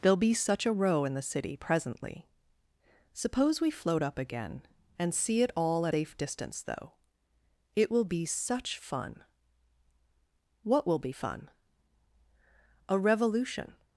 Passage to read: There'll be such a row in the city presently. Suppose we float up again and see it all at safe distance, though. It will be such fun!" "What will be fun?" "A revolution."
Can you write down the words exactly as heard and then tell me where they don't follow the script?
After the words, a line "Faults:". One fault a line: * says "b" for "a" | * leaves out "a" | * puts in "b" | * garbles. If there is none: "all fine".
There'll be such a row in the city presently. Suppose we float up again and see it all at safe distance, though. It will be such fun!" "What will be fun?" "A revolution."
Faults:
all fine